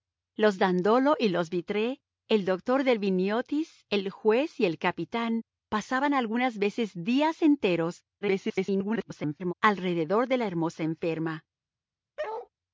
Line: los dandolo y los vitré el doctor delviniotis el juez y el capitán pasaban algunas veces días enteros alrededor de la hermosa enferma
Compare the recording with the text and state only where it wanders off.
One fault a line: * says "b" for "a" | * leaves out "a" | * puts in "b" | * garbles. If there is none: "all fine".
* garbles